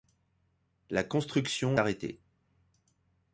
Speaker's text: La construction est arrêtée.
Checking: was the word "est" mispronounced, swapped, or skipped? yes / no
yes